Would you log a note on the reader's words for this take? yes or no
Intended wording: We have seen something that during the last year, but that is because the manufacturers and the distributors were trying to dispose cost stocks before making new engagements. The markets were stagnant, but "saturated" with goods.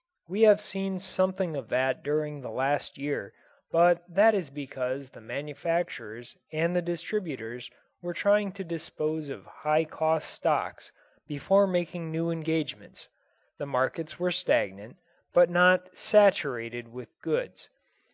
yes